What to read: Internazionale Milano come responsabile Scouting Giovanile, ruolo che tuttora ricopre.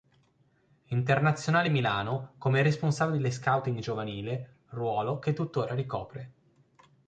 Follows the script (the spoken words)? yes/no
yes